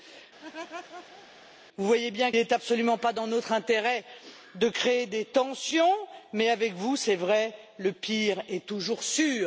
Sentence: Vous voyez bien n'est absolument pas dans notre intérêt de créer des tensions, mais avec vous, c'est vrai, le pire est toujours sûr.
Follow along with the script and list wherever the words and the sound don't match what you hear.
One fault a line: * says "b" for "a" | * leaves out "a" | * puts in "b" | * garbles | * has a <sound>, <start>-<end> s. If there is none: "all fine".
* has a laugh, 0.4-1.3 s